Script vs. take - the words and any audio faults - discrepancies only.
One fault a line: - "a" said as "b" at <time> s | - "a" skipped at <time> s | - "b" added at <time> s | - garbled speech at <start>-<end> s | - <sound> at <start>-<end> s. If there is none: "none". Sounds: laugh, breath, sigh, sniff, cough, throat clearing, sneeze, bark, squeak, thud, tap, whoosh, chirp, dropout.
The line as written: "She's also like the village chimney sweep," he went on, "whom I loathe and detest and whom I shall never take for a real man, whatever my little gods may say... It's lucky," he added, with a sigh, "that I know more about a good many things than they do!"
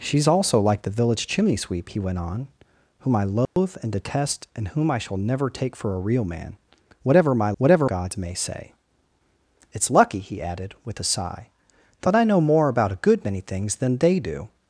- dropout at 3.5-3.6 s
- "little" said as "whatever" at 7.6 s